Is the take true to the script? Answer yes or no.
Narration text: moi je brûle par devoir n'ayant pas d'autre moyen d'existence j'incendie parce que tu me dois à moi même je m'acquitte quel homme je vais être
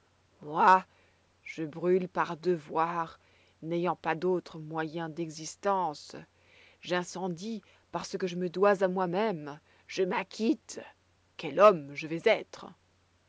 no